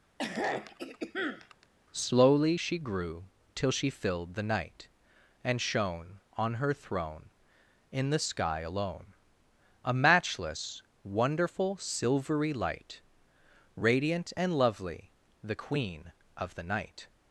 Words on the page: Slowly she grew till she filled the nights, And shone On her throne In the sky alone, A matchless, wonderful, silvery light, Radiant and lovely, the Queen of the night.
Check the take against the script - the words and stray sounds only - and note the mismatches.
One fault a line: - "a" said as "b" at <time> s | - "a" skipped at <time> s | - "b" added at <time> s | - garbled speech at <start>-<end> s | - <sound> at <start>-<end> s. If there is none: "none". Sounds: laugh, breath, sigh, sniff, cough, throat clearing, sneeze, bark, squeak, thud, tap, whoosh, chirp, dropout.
- throat clearing at 0.2-1.7 s
- "nights" said as "night" at 4.4 s